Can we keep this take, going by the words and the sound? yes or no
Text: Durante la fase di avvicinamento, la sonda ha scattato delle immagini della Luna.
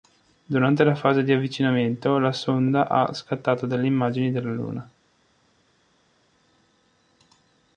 yes